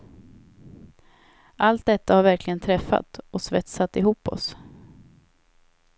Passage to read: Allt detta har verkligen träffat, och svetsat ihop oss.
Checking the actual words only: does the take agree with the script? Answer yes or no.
yes